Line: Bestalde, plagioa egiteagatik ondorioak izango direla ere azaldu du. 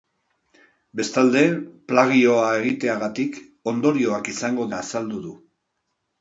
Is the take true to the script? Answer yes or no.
no